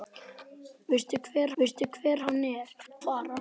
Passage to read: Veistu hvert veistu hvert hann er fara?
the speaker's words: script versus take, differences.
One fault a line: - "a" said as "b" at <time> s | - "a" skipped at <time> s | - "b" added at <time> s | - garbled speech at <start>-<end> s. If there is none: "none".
none